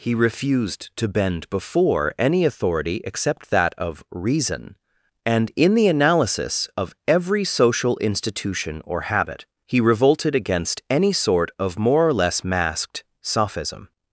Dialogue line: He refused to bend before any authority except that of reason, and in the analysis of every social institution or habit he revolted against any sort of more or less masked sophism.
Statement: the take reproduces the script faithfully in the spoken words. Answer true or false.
true